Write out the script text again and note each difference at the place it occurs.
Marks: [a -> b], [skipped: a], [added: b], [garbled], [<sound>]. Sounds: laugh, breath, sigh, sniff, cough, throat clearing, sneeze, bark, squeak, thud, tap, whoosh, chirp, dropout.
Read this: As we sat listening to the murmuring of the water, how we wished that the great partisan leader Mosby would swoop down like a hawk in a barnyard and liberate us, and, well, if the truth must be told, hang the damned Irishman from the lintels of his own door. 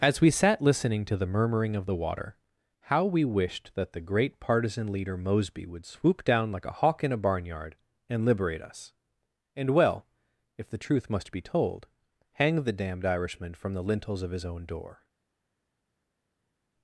As we sat listening to the murmuring of the water, how we wished that the great partisan leader Mosby would swoop down like a hawk in a barnyard and liberate us, and, well, if the truth must be told, hang the damned Irishman from the lintels of his own door.